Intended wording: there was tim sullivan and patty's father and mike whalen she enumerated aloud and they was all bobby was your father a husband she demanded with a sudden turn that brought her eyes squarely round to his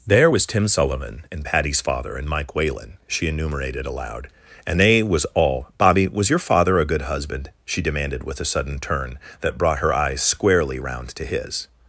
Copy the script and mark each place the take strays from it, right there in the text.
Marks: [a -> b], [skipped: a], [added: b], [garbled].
there was tim sullivan and patty's father and mike whalen she enumerated aloud and they was all bobby was your father a [added: good] husband she demanded with a sudden turn that brought her eyes squarely round to his